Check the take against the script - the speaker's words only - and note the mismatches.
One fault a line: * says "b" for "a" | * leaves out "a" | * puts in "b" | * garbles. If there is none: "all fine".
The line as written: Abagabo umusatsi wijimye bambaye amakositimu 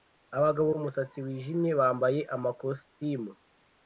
all fine